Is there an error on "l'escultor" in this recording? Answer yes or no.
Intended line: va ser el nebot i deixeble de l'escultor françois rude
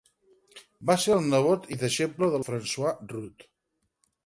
yes